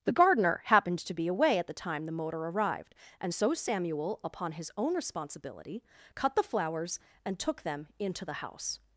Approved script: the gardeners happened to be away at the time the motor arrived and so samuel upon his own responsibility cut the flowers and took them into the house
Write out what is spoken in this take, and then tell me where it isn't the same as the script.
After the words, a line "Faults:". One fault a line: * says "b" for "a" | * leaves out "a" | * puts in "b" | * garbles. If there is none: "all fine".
the gardener happened to be away at the time the motor arrived and so samuel upon his own responsibility cut the flowers and took them into the house
Faults:
* says "gardener" for "gardeners"